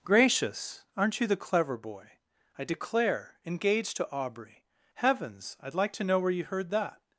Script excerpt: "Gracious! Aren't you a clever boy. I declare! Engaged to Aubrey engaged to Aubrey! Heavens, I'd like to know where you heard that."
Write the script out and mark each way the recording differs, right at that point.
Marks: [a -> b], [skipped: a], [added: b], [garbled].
"Gracious! Aren't you [a -> the] clever boy. I declare! Engaged to Aubrey [skipped: engaged to Aubrey!] Heavens, I'd like to know where you heard that."